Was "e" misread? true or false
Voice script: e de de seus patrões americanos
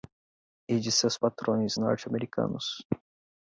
false